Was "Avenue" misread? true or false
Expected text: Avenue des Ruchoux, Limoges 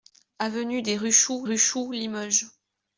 false